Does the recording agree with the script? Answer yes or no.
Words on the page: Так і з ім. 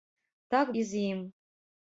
yes